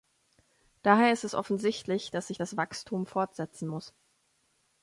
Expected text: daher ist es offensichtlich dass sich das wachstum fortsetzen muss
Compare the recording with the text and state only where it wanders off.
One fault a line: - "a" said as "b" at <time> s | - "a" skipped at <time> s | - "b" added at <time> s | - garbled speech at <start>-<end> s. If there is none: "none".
none